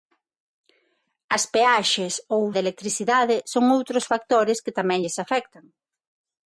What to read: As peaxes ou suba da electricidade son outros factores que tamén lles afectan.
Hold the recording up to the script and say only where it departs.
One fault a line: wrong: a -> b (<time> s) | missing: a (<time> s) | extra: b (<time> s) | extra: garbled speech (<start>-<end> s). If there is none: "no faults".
missing: suba (2.4 s)